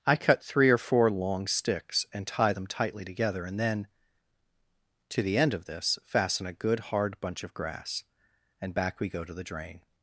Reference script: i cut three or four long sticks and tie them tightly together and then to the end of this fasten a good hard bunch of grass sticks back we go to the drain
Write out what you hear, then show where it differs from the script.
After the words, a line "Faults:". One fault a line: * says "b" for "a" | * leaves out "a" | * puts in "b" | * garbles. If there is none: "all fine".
i cut three or four long sticks and tie them tightly together and then to the end of this fasten a good hard bunch of grass and back we go to the drain
Faults:
* says "and" for "sticks"